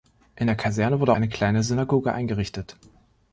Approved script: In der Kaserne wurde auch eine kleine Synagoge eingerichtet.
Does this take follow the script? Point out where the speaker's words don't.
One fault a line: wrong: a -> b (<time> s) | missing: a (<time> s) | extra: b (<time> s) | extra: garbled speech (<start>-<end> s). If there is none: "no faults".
missing: auch (1.1 s)